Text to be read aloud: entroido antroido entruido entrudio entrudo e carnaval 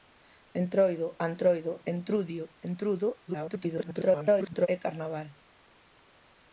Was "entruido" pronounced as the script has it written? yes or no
no